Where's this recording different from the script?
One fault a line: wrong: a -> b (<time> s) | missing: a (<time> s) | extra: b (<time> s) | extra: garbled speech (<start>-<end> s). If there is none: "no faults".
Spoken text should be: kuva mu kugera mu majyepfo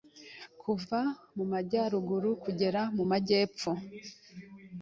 extra: majyaruguru (1.5 s)